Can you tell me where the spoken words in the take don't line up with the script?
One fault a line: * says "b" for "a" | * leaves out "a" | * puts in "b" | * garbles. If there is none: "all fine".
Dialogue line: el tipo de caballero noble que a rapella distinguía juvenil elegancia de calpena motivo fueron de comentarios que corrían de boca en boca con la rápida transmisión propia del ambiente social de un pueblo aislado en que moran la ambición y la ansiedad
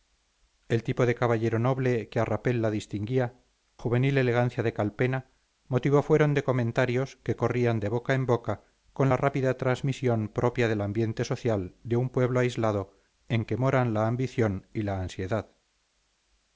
all fine